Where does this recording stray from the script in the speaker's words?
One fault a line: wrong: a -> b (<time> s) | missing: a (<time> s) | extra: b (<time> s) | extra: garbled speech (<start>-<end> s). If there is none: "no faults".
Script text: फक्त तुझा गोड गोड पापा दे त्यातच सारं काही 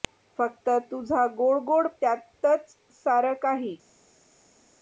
missing: पापा दे (1.9 s)